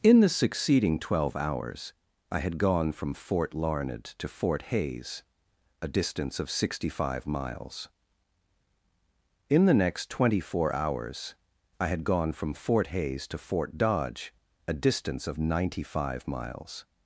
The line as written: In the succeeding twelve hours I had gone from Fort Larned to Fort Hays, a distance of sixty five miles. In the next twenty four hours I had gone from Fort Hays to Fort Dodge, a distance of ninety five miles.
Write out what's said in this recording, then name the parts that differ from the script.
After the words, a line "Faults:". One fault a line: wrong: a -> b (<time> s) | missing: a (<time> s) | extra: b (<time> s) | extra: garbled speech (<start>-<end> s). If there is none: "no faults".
In the succeeding twelve hours I had gone from Fort Larned to Fort Hays, a distance of sixty five miles. In the next twenty four hours I had gone from Fort Hays to Fort Dodge, a distance of ninety five miles.
Faults:
no faults